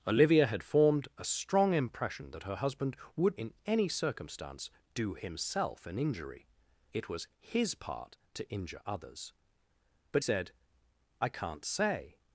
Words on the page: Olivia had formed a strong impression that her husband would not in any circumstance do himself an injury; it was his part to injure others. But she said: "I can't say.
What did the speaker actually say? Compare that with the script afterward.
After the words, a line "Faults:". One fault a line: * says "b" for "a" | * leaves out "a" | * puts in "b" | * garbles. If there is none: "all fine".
Olivia had formed a strong impression that her husband would in any circumstance do himself an injury; it was his part to injure others. But said: "I can't say.
Faults:
* leaves out "not"
* leaves out "she"